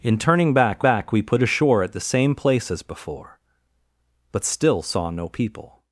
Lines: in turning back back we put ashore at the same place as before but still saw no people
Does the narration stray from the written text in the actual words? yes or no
no